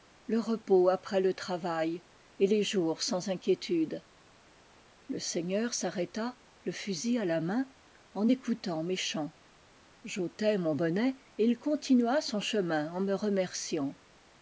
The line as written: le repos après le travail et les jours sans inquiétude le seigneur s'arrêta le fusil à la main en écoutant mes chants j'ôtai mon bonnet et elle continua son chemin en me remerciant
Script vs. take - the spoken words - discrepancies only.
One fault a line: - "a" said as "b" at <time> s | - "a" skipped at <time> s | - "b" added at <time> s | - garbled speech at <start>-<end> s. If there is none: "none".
- "elle" said as "il" at 11.4 s